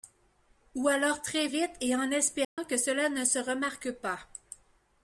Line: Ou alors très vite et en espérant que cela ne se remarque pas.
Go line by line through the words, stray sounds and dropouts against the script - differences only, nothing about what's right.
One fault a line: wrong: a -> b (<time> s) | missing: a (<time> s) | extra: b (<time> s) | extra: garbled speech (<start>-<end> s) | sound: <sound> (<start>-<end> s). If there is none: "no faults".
sound: dropout (2.4-2.6 s)